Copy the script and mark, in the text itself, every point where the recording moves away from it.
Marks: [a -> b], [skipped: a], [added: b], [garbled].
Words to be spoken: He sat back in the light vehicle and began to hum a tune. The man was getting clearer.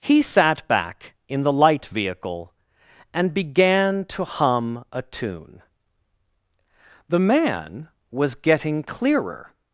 He sat back in the light vehicle and began to hum a tune. The man was getting clearer.